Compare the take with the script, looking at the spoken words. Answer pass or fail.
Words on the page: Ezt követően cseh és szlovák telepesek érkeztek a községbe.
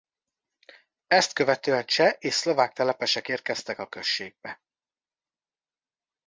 pass